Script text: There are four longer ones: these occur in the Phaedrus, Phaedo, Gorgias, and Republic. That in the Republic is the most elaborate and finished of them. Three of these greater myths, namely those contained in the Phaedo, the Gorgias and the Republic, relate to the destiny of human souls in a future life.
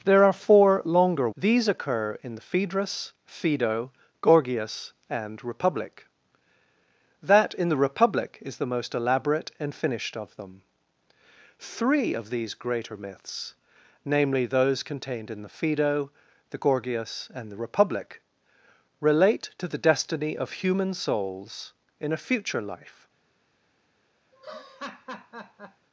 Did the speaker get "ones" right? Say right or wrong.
wrong